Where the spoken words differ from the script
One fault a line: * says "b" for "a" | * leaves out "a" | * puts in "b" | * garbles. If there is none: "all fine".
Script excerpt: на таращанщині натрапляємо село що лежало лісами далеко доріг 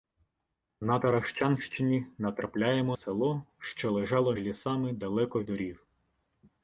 all fine